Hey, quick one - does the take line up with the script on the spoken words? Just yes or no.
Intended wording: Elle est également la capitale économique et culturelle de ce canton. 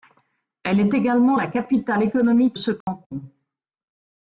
no